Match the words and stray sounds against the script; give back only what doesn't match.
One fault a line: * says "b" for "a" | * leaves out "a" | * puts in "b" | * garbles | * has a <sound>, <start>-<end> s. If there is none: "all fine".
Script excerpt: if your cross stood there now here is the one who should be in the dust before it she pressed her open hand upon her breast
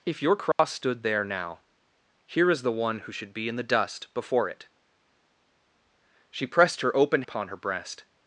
* has a dropout, 0.5-0.6 s
* leaves out "hand"